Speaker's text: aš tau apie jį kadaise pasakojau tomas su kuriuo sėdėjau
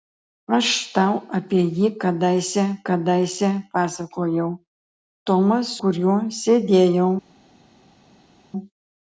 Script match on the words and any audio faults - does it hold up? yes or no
no